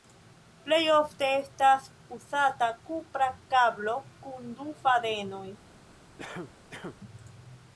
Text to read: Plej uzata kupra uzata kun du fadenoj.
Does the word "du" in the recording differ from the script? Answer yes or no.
no